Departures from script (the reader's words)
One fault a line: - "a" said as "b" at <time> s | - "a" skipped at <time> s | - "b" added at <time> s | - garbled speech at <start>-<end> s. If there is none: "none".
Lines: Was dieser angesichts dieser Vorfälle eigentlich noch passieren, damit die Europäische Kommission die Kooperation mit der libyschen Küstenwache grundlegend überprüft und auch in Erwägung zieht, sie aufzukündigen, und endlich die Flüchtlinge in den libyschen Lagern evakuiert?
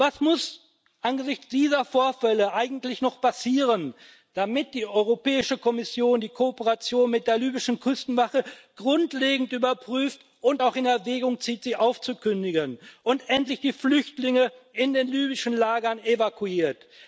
- "dieser" said as "muss" at 0.2 s